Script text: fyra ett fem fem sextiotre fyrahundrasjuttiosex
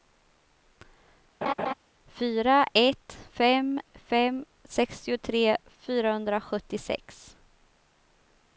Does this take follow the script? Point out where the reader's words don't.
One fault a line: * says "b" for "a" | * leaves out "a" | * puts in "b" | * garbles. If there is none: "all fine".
all fine